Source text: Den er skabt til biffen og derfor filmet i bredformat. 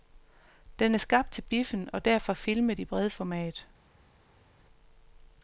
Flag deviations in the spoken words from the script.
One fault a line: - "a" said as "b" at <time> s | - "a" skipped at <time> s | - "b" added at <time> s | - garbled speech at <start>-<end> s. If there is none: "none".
none